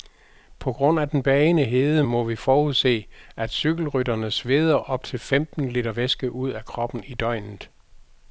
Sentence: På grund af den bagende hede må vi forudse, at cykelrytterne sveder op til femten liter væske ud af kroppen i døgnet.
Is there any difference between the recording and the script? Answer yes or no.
no